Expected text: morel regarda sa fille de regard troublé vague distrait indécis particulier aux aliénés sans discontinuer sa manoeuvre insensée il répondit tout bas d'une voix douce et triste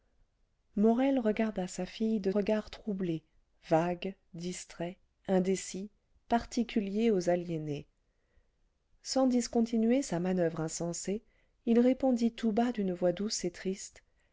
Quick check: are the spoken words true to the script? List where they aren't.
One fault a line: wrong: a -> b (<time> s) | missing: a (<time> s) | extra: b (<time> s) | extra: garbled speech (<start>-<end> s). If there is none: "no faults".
no faults